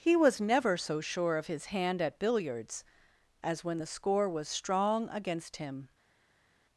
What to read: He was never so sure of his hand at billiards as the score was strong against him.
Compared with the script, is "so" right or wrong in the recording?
right